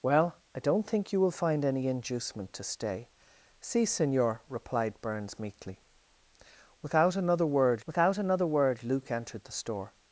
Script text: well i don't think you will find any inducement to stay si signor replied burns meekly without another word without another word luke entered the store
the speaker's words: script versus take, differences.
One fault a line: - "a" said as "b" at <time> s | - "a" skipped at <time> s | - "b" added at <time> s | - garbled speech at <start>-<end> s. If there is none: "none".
none